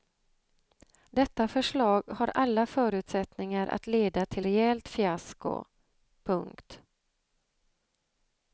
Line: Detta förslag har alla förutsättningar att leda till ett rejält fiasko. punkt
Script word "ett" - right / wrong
wrong